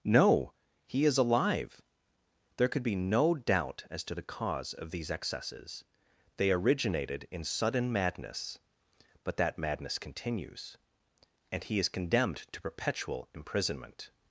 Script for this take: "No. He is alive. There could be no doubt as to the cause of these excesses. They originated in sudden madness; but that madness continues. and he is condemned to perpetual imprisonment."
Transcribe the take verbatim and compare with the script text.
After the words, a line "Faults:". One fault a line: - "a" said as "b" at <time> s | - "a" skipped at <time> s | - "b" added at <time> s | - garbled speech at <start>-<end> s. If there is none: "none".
"No. He is alive. There could be no doubt as to the cause of these excesses. They originated in sudden madness; but that madness continues. and he is condemned to perpetual imprisonment."
Faults:
none